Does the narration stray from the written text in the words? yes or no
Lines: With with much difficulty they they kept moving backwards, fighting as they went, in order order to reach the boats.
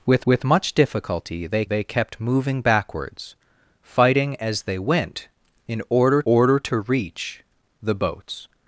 no